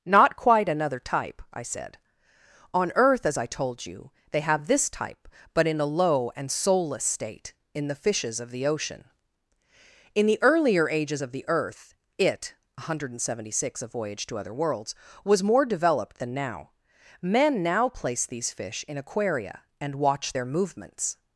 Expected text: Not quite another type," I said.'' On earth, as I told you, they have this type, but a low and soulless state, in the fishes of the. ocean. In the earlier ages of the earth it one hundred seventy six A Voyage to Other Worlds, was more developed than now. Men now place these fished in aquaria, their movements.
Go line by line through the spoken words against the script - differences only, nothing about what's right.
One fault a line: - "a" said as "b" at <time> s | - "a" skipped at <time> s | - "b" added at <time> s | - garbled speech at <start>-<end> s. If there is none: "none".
- "in" added at 5.7 s
- "fished" said as "fish" at 18.5 s
- "and watch" added at 19.8 s